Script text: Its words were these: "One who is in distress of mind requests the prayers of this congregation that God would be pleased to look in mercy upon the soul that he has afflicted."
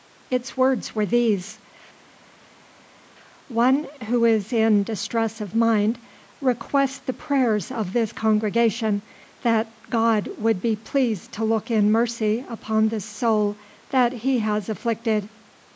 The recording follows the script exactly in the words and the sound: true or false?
true